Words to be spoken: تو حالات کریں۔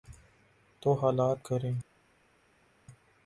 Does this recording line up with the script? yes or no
yes